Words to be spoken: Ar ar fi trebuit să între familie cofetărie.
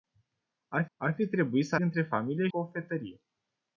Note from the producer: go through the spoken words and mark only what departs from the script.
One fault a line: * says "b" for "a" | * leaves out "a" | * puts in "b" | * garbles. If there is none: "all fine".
all fine